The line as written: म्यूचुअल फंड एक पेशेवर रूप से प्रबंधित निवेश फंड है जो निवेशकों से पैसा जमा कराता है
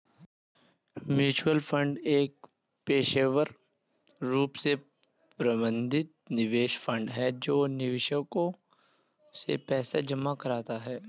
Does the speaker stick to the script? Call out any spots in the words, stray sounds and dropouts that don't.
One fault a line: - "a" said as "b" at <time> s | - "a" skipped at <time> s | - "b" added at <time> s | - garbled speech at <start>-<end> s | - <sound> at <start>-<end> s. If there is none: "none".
none